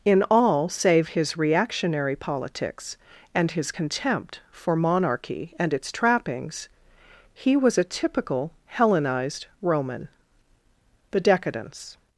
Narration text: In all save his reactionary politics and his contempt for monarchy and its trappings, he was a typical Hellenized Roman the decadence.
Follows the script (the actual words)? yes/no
yes